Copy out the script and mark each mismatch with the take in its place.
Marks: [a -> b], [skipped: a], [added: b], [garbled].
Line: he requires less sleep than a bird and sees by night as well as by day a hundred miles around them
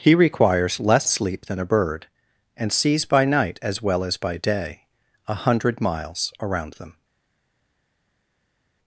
he requires less sleep than a bird and sees by night as well as by day a hundred miles around them